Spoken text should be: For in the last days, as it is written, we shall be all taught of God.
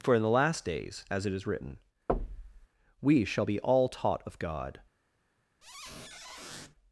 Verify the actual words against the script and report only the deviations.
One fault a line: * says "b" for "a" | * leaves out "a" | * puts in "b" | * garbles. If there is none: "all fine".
all fine